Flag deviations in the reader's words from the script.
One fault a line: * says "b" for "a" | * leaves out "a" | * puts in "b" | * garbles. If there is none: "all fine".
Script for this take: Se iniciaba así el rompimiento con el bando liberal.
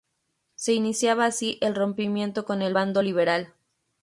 all fine